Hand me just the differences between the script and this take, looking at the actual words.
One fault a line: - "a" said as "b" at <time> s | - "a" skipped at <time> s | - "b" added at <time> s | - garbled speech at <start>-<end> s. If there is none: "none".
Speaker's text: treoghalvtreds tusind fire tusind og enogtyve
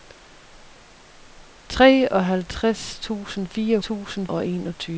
none